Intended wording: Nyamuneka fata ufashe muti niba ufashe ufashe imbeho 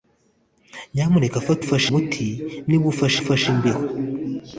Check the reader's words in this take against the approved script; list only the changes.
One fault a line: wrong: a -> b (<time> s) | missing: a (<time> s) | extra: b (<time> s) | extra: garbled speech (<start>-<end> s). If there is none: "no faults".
no faults